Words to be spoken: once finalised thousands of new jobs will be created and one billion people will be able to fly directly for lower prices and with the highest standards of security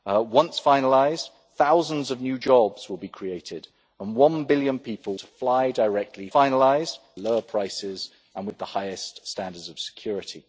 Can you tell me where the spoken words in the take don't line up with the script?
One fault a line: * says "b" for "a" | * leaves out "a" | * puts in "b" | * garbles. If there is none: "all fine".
* leaves out "will be able"
* says "finalised" for "for"